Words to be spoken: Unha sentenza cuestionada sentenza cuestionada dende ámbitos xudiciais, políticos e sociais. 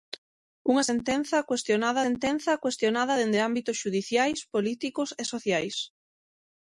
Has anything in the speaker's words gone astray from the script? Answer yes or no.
no